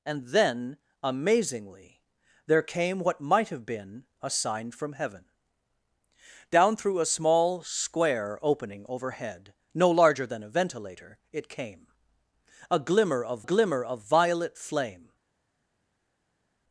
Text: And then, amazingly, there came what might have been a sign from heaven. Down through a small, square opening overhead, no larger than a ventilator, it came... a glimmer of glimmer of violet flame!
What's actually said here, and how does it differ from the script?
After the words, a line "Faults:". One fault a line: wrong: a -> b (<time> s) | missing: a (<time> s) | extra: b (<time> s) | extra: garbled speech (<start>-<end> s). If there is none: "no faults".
And then, amazingly, there came what might have been a sign from heaven. Down through a small, square opening overhead, no larger than a ventilator, it came... a glimmer of glimmer of violet flame!
Faults:
no faults